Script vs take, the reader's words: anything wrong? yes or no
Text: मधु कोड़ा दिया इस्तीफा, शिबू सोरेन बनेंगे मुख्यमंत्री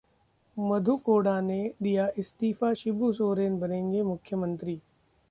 yes